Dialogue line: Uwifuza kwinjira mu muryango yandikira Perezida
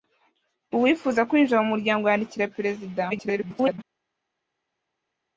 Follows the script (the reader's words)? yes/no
no